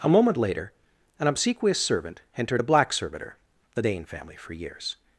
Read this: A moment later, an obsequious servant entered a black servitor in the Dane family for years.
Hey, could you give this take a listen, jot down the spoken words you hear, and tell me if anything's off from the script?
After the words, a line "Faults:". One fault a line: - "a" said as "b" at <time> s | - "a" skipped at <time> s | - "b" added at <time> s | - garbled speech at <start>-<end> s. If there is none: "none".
A moment later, an obsequious servant entered a black servitor the Dane family for years.
Faults:
- "in" skipped at 3.4 s